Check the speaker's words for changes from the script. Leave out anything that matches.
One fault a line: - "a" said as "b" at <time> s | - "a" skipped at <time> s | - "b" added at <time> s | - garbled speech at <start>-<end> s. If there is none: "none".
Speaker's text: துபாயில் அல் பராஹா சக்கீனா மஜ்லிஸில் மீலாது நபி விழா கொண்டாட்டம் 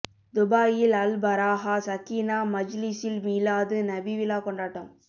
none